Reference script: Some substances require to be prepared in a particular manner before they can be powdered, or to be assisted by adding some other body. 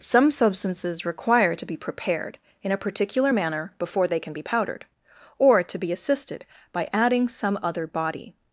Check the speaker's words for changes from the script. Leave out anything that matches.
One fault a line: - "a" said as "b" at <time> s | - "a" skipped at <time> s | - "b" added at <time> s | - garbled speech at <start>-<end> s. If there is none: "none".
none